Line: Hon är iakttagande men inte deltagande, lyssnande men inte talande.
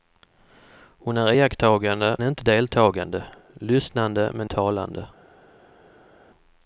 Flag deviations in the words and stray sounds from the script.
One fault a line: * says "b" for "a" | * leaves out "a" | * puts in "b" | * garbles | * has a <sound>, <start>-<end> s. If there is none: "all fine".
* leaves out "men"
* leaves out "inte"